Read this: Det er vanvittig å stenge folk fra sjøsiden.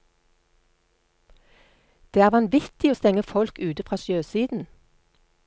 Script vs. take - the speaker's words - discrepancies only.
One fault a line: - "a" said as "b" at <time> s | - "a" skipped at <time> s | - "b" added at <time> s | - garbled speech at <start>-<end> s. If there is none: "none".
- "ute" added at 3.6 s